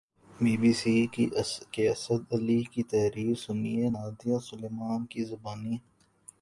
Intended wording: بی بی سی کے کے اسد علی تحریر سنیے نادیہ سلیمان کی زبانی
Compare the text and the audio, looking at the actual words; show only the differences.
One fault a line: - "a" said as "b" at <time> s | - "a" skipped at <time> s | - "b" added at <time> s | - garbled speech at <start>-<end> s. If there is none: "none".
- "کے" skipped at 1.8 s
- "کی" added at 2.7 s